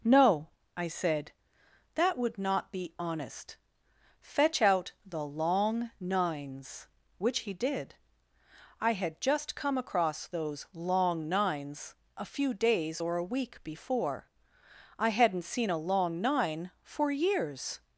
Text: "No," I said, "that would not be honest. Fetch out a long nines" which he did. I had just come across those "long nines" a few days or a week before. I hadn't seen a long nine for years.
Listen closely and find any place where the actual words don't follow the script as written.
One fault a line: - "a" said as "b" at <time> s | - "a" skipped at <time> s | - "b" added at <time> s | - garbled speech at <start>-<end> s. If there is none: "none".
- "a" said as "the" at 5.0 s